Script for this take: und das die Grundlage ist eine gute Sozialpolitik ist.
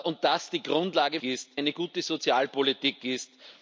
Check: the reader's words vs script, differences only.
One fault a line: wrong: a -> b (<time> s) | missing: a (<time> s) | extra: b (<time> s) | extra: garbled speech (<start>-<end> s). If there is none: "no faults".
no faults